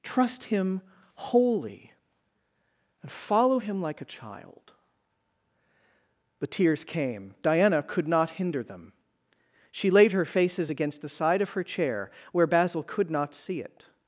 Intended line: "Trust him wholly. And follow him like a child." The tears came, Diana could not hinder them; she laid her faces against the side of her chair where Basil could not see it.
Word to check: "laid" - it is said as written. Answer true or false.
true